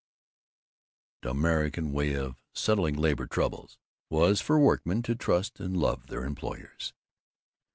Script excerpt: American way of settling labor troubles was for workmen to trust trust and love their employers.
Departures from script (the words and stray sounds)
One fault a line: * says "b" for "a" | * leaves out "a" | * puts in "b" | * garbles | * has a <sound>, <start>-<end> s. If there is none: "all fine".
* leaves out "trust"